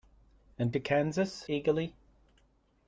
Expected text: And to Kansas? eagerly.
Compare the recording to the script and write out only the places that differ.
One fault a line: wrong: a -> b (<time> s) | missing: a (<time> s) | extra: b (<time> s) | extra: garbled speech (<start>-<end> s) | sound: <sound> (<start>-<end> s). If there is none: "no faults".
no faults